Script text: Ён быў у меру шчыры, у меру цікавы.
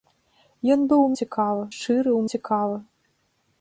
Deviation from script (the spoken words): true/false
true